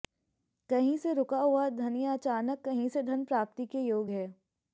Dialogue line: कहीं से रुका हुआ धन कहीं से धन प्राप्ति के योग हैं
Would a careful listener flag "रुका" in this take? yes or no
no